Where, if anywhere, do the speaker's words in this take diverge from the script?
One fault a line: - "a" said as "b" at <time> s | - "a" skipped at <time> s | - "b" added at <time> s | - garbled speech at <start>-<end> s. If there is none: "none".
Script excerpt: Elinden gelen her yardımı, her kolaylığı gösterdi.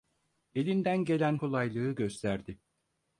- "her yardımı her" skipped at 1.4 s